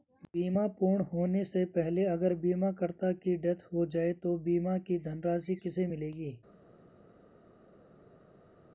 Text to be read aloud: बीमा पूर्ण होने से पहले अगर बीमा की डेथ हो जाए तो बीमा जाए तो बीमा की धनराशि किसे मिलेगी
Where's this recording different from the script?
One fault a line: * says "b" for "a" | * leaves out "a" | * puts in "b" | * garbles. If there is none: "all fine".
* puts in "करता"
* leaves out "जाए तो बीमा"